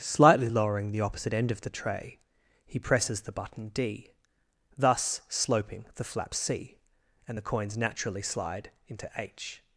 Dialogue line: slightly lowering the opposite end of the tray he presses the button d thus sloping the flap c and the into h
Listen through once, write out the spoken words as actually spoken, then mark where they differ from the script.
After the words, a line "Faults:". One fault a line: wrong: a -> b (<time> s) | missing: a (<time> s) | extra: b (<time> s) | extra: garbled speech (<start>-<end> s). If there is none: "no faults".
slightly lowering the opposite end of the tray he presses the button d thus sloping the flap c and the coins naturally slide into h
Faults:
extra: coins naturally slide (7.4 s)